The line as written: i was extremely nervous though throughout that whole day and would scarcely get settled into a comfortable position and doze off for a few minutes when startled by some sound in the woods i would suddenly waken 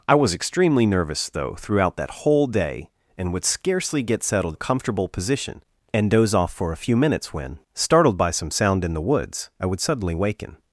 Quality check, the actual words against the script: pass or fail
fail